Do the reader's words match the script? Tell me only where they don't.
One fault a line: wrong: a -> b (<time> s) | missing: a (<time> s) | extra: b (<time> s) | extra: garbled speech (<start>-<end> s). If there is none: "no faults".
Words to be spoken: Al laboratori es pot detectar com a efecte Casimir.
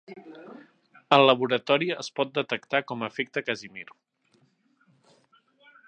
no faults